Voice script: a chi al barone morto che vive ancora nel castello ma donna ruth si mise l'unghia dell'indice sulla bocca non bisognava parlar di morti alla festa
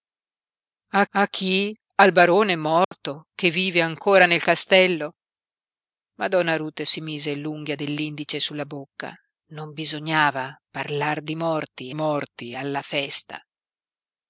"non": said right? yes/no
yes